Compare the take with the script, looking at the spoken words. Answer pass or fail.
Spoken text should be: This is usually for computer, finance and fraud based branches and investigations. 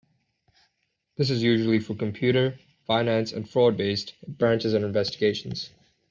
pass